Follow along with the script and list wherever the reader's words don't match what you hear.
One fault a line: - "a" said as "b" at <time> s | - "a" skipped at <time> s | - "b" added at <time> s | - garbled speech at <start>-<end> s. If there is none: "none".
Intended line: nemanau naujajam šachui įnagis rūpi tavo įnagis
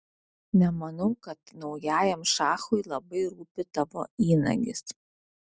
- "kad" added at 1.2 s
- "įnagis" said as "labai" at 2.9 s